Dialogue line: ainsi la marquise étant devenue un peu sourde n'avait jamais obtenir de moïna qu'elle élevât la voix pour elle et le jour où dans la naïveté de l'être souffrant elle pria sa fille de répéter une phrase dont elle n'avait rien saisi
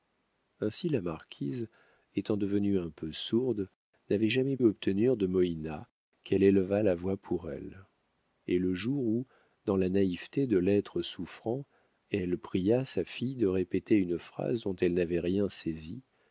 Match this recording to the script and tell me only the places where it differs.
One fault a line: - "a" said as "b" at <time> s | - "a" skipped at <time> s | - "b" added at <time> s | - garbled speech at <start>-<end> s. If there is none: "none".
none